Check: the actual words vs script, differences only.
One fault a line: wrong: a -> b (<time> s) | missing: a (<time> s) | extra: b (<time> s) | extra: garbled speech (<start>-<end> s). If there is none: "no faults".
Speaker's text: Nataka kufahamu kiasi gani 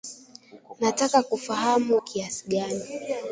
no faults